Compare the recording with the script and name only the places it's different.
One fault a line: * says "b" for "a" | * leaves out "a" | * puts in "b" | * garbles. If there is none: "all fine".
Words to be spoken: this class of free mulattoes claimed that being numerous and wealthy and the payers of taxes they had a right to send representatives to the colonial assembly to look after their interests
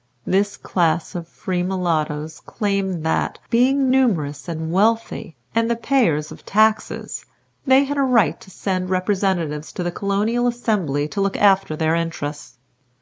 all fine